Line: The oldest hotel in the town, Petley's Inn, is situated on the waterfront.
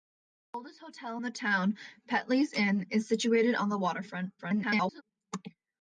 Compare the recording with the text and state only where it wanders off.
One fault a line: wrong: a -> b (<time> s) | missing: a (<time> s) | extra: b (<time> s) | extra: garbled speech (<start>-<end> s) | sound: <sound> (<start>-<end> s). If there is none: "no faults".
extra: garbled speech (4.4-5.0 s)